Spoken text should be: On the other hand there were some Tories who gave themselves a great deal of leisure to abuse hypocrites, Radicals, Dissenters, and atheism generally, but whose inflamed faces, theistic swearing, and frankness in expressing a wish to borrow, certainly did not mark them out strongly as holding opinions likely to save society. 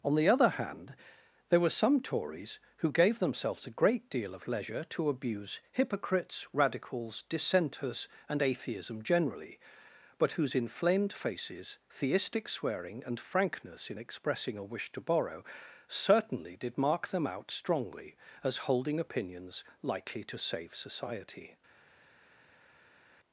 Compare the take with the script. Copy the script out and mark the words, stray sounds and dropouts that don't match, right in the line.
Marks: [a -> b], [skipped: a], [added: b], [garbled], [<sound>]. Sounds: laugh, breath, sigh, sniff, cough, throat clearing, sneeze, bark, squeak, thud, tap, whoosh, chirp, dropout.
On the other hand there were some Tories who gave themselves a great deal of leisure to abuse hypocrites, Radicals, Dissenters, and atheism generally, but whose inflamed faces, theistic swearing, and frankness in expressing a wish to borrow, certainly did [skipped: not] mark them out strongly as holding opinions likely to save society.